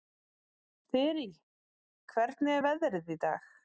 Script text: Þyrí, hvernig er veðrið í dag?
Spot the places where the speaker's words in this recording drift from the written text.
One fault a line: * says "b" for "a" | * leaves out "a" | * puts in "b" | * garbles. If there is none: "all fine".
all fine